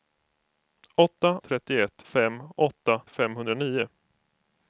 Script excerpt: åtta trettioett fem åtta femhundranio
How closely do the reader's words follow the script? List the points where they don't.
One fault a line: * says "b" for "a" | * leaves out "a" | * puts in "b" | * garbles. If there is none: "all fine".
all fine